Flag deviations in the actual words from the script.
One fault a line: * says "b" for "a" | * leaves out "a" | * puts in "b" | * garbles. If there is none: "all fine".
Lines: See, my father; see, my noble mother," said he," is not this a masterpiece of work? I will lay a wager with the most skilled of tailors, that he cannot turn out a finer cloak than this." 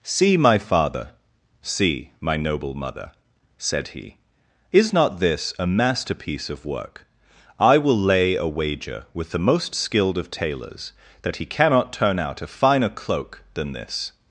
all fine